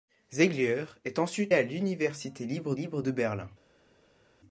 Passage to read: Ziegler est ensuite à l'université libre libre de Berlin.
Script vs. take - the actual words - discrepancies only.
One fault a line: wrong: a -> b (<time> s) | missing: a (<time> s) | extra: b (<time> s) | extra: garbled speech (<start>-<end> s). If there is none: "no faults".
no faults